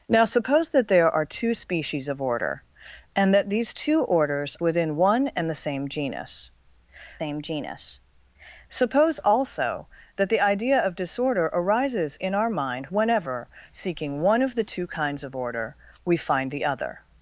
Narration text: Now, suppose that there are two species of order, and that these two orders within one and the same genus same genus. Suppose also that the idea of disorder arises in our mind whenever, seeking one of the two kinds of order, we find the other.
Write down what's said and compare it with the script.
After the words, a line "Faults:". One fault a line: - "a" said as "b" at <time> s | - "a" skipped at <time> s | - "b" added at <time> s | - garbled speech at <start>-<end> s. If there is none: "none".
Now, suppose that there are two species of order, and that these two orders within one and the same genus same genus. Suppose also that the idea of disorder arises in our mind whenever, seeking one of the two kinds of order, we find the other.
Faults:
none